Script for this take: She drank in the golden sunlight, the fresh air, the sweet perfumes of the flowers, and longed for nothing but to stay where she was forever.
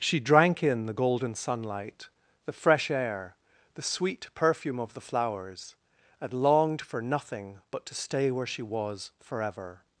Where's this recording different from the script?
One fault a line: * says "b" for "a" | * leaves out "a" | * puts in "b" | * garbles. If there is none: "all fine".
* says "perfume" for "perfumes"